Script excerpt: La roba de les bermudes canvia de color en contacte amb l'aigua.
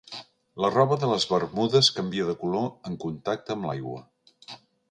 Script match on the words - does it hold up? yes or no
yes